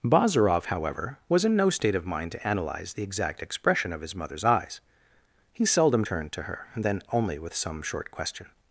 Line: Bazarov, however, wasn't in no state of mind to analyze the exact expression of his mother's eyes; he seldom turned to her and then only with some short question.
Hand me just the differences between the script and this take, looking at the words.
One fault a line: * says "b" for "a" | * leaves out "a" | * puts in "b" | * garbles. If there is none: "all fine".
* says "was" for "wasn't"